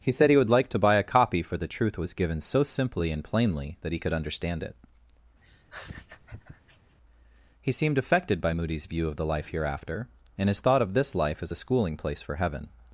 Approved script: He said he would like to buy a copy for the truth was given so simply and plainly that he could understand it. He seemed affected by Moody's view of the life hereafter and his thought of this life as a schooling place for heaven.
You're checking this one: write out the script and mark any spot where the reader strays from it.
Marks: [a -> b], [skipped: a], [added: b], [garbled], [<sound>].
He said he would like to buy a copy for the truth was given so simply and plainly that he could understand it. [laugh] He seemed affected by Moody's view of the life hereafter and his thought of this life as a schooling place for heaven.